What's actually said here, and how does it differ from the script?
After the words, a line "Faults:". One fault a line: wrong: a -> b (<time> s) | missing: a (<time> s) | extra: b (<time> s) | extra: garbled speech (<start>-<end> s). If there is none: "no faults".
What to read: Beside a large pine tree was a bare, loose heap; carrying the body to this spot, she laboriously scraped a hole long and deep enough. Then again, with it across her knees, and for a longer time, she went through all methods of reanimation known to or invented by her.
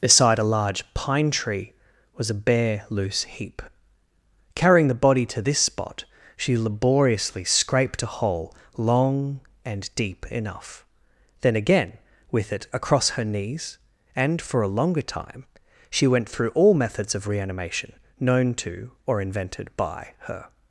Beside a large pine tree was a bare, loose heap; carrying the body to this spot, she laboriously scraped a hole long and deep enough. Then again, with it across her knees, and for a longer time, she went through all methods of reanimation known to or invented by her.
Faults:
no faults